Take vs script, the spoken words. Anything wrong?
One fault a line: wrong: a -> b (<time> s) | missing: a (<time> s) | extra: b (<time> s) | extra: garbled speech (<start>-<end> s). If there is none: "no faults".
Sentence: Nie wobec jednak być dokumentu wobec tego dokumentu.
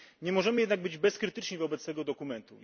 wrong: wobec -> możemy (0.3 s)
wrong: dokumentu -> bezkrytyczni (1.0 s)